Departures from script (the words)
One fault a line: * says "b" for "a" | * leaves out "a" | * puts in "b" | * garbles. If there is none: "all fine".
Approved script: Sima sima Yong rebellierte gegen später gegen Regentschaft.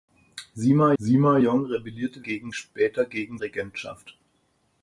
all fine